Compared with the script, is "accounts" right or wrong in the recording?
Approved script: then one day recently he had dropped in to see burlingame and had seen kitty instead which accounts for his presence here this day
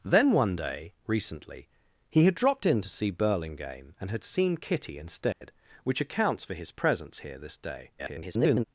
right